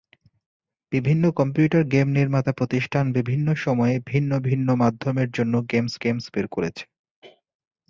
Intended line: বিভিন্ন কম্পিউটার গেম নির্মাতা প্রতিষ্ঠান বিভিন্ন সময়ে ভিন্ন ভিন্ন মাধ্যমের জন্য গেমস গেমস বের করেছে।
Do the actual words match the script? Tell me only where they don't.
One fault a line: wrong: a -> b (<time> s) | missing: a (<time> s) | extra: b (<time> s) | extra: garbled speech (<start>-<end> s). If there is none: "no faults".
no faults